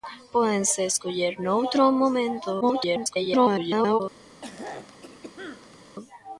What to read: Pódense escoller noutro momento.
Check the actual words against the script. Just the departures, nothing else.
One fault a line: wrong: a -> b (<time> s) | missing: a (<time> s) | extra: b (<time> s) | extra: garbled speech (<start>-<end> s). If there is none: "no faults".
extra: garbled speech (2.6-4.0 s)